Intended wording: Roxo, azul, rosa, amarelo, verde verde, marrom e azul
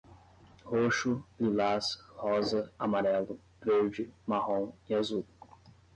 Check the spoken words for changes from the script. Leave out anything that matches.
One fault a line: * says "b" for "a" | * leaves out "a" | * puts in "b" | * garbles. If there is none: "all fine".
* says "lilás" for "azul"
* leaves out "verde"